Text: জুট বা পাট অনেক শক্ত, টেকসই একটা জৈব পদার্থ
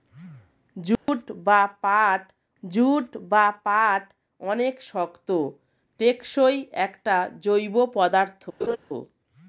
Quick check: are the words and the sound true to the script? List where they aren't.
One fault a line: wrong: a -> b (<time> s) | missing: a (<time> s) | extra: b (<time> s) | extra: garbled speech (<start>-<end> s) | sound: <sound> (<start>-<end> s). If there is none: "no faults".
sound: dropout (1.0-1.1 s)
extra: জুট বা পাট (2.6 s)
sound: laugh (8.6-8.8 s)